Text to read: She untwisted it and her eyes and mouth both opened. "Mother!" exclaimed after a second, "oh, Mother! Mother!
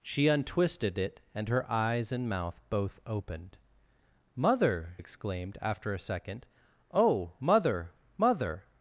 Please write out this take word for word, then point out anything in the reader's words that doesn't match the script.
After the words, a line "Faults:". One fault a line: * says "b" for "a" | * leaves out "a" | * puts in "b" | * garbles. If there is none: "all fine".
She untwisted it and her eyes and mouth both opened. "Mother!" exclaimed after a second, "oh, Mother! Mother!
Faults:
all fine